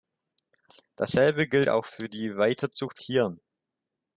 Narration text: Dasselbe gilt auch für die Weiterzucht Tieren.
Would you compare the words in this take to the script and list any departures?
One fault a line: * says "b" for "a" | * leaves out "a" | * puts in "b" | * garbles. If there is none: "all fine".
all fine